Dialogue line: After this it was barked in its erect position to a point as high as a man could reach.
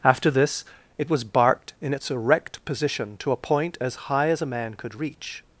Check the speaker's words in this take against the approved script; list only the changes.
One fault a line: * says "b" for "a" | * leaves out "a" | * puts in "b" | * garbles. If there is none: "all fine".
all fine